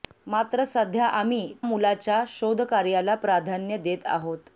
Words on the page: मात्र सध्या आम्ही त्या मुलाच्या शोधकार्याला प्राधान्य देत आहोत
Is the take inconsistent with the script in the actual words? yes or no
yes